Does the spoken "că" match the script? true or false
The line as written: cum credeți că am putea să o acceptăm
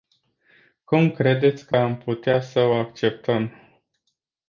true